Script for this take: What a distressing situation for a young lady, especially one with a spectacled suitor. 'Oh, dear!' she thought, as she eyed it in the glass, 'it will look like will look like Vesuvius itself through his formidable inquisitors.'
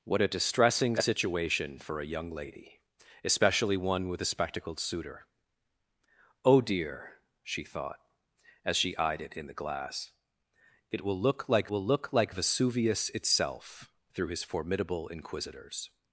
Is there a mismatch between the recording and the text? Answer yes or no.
no